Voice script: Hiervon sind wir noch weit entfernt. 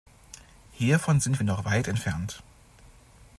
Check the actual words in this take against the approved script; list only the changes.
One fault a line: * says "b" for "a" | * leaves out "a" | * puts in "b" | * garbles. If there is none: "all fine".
all fine